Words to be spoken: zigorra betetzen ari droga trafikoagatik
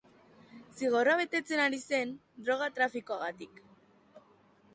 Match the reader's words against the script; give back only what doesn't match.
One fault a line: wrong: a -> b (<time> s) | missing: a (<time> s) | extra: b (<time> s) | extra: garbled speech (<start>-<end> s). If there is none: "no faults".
extra: zen (1.9 s)